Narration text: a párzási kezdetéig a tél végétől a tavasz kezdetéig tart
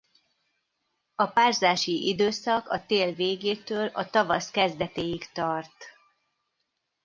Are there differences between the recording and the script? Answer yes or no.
yes